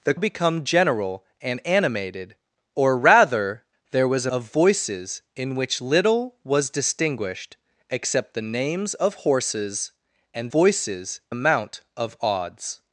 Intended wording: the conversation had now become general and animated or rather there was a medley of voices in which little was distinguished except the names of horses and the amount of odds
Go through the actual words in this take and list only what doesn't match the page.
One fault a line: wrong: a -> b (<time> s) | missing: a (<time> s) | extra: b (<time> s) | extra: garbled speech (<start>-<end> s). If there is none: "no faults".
missing: conversation had now (0.1 s)
missing: medley (4.3 s)
wrong: the -> voices (10.5 s)